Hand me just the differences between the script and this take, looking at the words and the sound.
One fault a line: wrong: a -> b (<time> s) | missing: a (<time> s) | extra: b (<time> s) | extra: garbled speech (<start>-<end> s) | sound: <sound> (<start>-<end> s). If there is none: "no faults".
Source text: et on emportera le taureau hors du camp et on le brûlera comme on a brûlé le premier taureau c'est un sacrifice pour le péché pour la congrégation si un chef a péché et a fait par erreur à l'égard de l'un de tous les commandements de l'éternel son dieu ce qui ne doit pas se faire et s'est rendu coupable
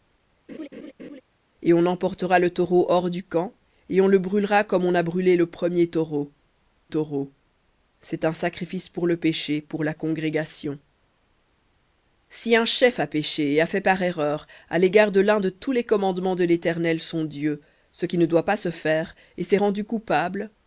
sound: laugh (0.5-1.2 s)
extra: taureau (6.9 s)